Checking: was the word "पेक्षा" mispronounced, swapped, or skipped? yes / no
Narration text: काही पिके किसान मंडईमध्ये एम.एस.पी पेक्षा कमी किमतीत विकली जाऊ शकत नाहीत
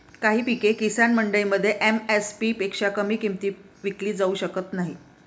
no